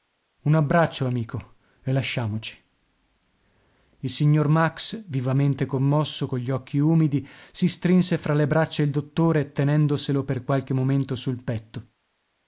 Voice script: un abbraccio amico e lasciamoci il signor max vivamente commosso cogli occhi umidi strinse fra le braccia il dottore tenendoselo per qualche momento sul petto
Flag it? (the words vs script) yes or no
yes